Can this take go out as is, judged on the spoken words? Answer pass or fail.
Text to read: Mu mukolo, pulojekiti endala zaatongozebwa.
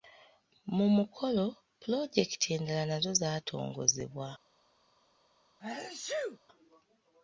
fail